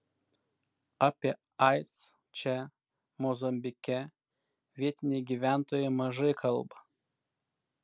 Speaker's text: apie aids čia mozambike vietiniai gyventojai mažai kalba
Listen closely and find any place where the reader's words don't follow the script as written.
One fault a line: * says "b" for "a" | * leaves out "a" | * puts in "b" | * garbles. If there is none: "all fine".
all fine